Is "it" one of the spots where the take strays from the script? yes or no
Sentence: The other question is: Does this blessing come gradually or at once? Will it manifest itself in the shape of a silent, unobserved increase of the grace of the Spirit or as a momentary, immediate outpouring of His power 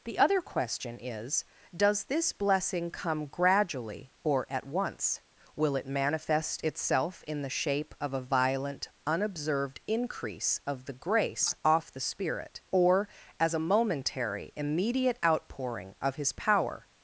no